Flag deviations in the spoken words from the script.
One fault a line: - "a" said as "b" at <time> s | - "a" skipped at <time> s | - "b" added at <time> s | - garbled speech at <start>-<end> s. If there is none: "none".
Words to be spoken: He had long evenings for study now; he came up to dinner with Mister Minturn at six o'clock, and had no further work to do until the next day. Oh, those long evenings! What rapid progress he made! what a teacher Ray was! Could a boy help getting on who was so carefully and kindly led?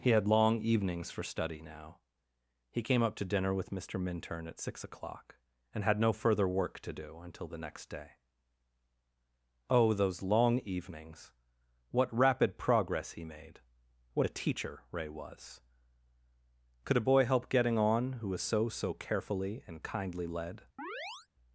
- "so" added at 18.7 s